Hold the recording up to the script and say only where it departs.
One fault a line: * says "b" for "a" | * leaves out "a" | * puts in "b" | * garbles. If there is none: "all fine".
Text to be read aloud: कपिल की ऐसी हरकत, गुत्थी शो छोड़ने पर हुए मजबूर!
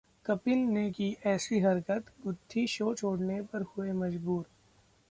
* puts in "ने"